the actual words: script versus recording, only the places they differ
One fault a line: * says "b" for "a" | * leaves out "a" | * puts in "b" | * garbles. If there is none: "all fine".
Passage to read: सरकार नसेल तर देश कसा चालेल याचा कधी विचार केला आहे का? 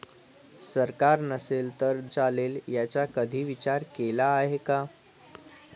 * leaves out "देश कसा"